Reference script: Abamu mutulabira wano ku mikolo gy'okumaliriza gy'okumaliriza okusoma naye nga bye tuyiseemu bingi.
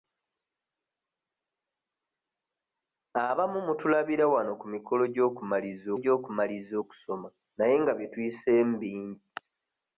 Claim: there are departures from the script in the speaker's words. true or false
false